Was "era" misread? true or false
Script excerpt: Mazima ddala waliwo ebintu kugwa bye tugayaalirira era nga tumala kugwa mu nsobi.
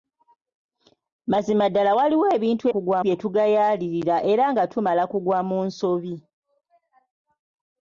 false